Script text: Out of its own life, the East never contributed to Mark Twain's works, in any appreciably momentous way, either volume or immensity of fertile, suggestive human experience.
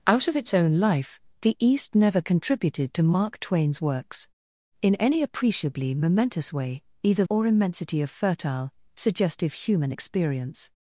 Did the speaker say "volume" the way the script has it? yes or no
no